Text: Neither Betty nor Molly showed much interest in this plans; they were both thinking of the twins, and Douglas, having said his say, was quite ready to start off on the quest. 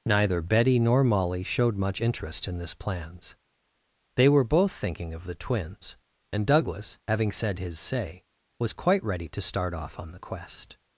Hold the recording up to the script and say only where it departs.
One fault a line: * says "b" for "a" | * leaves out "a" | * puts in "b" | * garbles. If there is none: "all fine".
all fine